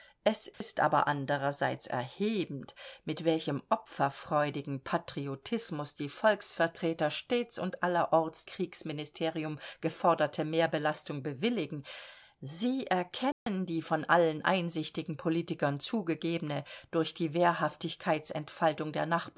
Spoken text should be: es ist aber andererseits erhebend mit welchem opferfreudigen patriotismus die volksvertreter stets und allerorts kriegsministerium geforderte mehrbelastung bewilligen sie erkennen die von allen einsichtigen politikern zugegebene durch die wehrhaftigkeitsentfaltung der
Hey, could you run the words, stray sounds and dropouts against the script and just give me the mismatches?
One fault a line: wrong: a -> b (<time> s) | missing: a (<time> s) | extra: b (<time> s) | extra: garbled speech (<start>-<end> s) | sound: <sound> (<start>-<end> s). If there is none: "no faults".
sound: dropout (0.5-0.6 s)
sound: dropout (13.3-13.5 s)